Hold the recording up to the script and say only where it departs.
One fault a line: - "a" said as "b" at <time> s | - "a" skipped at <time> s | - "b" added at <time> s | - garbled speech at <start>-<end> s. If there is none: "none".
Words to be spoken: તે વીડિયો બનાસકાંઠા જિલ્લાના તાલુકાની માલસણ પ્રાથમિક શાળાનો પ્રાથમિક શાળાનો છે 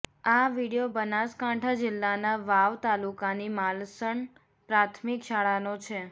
- "તે" said as "આ" at 0.3 s
- "વાવ" added at 2.4 s
- "પ્રાથમિક શાળાનો" skipped at 5.8 s